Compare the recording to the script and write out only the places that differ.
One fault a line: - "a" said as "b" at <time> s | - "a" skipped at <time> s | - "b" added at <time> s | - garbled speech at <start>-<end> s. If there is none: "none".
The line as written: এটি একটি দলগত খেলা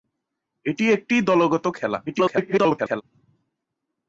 - garbled speech at 2.1-3.0 s